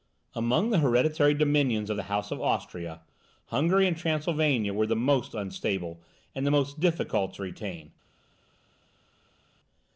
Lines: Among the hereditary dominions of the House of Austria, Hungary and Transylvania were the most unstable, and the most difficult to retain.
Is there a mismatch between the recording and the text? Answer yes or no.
no